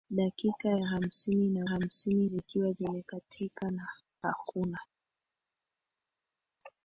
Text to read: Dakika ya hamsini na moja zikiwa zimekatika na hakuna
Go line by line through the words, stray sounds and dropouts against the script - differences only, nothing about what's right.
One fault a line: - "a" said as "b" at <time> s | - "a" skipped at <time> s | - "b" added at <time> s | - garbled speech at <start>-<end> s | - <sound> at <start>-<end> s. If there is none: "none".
- "moja" said as "hamsini" at 1.7 s